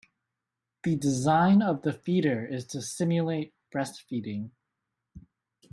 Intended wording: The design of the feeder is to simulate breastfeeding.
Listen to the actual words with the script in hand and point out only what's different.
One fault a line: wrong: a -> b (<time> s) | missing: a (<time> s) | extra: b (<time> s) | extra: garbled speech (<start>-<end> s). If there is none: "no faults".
no faults